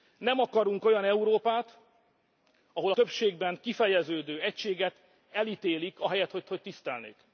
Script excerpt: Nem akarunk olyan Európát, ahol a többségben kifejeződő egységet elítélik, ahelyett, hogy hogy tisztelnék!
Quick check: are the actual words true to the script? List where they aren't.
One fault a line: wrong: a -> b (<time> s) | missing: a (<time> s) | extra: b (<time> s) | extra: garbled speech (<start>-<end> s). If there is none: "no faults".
no faults